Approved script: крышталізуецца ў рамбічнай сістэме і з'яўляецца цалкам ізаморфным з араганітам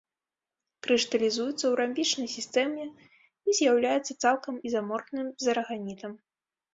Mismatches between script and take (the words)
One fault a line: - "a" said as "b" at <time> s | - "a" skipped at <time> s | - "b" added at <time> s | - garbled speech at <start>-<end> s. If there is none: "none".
none